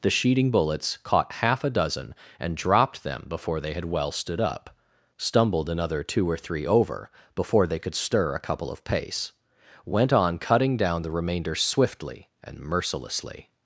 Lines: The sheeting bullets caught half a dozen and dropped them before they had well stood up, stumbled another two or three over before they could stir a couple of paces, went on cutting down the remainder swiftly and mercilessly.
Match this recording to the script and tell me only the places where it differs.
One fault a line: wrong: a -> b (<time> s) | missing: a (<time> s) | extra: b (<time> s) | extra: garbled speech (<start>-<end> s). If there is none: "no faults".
wrong: paces -> pace (8.8 s)